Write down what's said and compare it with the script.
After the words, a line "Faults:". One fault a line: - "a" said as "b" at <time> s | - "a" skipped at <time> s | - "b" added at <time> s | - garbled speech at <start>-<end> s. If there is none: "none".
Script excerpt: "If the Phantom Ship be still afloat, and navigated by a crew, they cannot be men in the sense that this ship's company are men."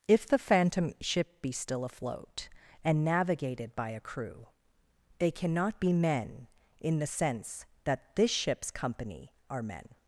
"If the Phantom Ship be still afloat, and navigated by a crew, they cannot be men in the sense that this ship's company are men."
Faults:
none